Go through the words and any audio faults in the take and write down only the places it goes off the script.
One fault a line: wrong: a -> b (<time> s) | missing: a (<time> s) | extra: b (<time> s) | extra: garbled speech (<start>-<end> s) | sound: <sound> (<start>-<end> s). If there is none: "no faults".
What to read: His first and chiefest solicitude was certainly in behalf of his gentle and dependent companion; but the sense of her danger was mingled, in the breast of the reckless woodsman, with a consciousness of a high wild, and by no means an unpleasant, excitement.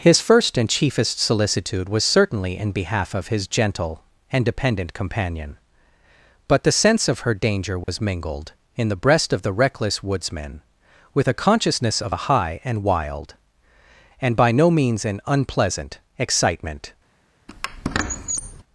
sound: dropout (7.8-7.9 s)
extra: and (12.6 s)
sound: squeak (17.5-18.6 s)